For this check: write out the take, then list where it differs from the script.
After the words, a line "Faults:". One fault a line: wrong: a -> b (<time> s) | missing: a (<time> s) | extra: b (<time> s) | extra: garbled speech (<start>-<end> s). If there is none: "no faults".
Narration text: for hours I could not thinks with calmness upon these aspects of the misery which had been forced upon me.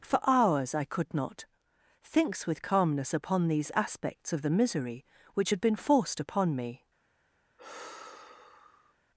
for hours I could not thinks with calmness upon these aspects of the misery which had been forced upon me.
Faults:
no faults